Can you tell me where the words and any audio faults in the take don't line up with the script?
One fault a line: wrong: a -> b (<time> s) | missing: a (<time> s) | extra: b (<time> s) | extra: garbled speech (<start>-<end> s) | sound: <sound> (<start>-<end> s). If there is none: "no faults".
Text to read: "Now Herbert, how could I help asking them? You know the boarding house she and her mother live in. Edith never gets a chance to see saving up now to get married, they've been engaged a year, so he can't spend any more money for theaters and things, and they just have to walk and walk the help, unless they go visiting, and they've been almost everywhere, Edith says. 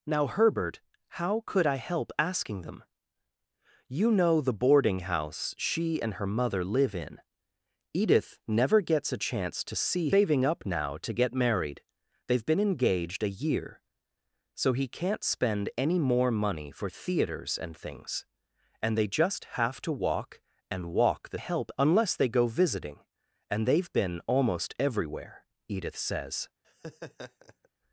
sound: laugh (26.6-27.7 s)